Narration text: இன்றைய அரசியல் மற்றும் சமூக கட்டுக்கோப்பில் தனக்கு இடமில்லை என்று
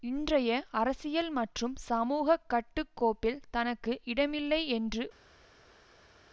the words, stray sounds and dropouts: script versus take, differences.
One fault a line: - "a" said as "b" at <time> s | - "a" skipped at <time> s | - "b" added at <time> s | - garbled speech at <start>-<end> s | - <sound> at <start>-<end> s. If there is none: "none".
none